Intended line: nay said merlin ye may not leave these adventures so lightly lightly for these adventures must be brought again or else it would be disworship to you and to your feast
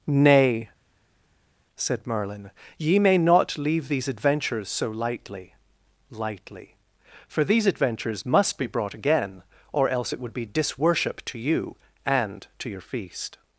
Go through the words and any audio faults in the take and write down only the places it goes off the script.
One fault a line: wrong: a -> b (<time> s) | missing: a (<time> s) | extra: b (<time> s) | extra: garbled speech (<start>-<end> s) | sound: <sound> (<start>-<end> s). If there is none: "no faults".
no faults